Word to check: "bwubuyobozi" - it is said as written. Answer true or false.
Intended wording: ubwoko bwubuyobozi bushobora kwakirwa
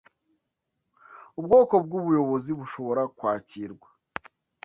true